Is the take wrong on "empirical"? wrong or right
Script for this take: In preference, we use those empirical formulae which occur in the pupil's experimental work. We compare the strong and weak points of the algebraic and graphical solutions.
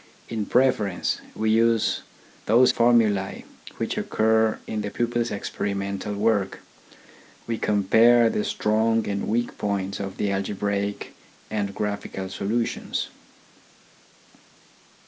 wrong